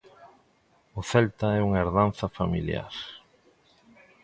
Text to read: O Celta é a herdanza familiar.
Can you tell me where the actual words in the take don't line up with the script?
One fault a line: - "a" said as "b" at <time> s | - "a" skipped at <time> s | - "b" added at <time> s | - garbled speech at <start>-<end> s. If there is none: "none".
- "a" said as "unha" at 1.7 s